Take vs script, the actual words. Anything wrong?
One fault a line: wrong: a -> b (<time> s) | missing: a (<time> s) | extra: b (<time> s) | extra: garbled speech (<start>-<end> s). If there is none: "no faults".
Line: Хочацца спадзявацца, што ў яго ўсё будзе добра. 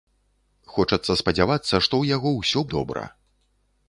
missing: будзе (2.6 s)